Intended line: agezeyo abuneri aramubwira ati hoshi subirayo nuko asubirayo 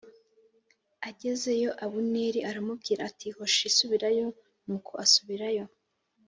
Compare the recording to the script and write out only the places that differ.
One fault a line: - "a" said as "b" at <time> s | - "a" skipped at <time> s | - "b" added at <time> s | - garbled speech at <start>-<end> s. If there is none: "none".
none